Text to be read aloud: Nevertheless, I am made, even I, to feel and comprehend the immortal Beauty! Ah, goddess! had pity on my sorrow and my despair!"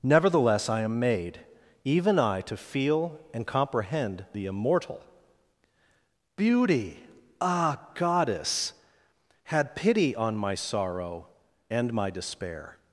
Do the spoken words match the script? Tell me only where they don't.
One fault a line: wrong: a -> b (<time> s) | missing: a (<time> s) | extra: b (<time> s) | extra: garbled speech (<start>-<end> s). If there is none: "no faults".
no faults